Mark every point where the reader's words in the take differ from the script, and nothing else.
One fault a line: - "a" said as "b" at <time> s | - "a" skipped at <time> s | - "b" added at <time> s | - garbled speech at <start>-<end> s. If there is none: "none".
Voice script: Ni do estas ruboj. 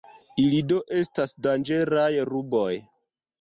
- "Ni" said as "Ili" at 0.4 s
- "danĝeraj" added at 1.5 s